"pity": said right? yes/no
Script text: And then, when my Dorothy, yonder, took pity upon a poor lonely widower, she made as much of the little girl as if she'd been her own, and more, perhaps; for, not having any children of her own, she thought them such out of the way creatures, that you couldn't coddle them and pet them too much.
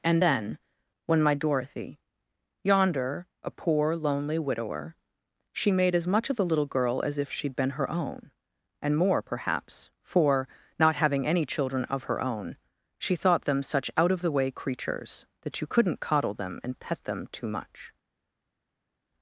no